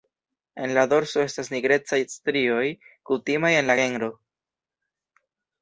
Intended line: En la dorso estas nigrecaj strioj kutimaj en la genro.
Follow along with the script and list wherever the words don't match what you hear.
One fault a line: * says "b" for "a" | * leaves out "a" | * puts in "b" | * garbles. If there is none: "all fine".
all fine